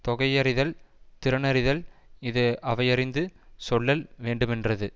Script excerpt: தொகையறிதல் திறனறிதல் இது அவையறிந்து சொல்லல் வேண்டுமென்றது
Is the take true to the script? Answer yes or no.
yes